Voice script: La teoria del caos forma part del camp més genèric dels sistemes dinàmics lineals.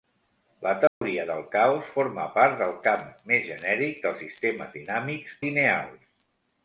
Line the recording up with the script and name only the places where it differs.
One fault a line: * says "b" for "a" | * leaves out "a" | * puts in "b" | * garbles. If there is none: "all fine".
all fine